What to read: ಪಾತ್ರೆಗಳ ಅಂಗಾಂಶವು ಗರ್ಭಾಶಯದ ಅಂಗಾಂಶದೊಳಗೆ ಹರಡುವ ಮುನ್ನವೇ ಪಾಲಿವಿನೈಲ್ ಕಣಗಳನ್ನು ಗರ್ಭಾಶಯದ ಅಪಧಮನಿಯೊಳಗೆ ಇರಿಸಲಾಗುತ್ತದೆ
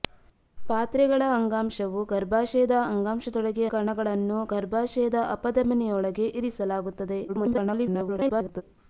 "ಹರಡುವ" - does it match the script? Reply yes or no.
no